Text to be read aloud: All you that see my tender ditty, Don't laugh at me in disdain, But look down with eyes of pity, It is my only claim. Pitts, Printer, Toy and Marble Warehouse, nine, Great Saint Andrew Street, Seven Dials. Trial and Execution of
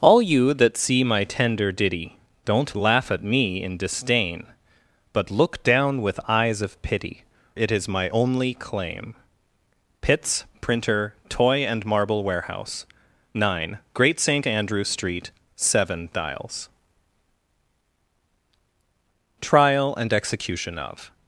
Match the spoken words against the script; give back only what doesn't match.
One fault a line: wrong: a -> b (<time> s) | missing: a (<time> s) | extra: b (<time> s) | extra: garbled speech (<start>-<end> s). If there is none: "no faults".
no faults